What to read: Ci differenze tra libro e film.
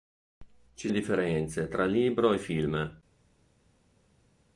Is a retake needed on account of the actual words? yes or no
no